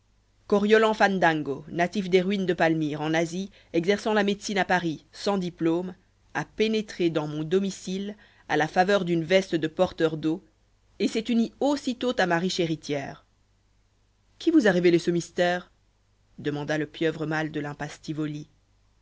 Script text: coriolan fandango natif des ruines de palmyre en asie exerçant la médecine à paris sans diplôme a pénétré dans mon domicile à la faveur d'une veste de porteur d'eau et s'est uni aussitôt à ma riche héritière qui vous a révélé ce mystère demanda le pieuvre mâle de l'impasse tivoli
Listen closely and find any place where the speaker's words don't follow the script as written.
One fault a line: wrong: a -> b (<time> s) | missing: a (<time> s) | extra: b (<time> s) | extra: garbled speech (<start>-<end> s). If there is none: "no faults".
no faults